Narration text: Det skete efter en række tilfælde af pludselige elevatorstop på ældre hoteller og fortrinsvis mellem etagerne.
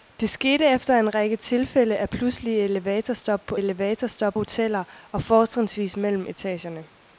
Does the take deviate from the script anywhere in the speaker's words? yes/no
yes